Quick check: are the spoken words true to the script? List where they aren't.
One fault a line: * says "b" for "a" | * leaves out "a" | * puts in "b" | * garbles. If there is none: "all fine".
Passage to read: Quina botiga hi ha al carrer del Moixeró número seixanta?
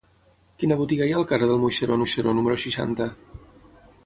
* puts in "Moixeró"